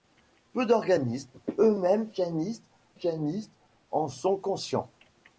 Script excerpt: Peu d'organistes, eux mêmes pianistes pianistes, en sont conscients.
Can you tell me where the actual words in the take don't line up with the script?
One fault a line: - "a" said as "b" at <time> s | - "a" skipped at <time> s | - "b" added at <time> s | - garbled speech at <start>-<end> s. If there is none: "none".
none